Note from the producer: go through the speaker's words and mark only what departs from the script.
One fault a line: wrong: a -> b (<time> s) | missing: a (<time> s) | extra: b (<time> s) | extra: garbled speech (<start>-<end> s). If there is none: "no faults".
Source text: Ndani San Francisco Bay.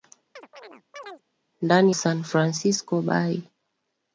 no faults